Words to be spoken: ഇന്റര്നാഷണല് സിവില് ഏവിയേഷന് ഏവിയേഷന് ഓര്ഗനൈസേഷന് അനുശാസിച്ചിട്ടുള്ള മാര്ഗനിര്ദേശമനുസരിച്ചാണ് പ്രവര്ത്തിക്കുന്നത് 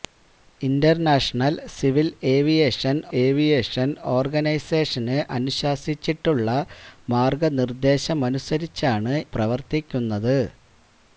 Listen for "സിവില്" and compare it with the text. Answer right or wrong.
right